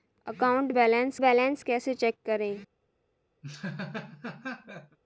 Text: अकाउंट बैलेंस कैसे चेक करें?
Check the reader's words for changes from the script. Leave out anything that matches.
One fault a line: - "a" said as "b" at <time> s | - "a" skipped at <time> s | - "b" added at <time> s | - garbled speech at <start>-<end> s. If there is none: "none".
- "बैलेंस" added at 1.2 s